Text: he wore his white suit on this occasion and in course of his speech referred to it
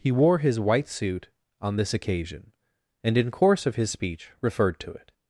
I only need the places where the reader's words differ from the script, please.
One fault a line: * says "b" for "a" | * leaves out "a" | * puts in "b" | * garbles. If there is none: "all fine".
all fine